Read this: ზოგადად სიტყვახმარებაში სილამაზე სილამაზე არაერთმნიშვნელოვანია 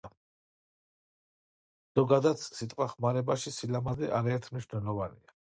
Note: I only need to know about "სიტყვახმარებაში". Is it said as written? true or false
true